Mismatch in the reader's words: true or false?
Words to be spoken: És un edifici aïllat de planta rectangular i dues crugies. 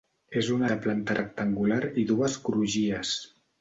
true